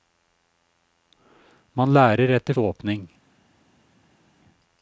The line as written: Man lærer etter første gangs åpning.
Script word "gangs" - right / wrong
wrong